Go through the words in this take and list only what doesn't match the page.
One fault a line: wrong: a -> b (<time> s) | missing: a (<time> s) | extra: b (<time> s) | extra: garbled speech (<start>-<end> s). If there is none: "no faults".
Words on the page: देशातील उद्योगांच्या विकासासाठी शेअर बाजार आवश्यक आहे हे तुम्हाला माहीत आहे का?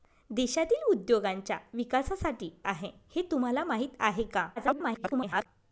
missing: शेअर बाजार आवश्यक (2.5 s)
extra: garbled speech (4.6-5.5 s)